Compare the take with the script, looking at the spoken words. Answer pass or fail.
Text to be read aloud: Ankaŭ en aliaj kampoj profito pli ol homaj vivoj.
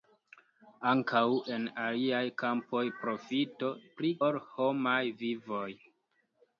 pass